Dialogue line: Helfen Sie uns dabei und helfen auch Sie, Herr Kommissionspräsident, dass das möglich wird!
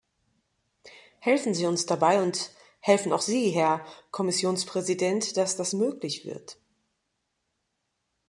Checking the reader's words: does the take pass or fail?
pass